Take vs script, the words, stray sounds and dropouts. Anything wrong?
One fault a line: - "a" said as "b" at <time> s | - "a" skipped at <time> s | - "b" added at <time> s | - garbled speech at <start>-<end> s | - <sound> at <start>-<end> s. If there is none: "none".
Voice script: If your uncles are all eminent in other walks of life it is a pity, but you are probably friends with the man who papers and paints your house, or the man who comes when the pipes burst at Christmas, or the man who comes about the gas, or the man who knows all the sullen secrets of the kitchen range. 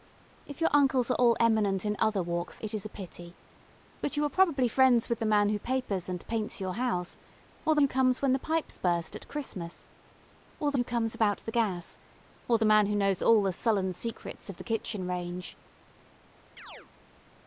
- "of life" skipped at 2.6 s
- "man" skipped at 7.8 s
- "man" skipped at 10.8 s
- chirp at 16.6-16.9 s